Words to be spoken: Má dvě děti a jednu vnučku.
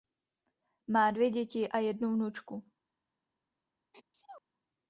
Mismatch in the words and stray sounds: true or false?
true